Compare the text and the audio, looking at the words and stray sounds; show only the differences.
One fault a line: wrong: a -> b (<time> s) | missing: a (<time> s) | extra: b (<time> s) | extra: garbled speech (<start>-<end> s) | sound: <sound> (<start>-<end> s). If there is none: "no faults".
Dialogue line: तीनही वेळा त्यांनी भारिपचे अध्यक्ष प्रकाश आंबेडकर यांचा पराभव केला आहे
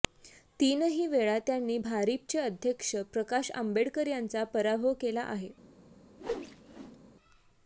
sound: whoosh (6.2-7.0 s)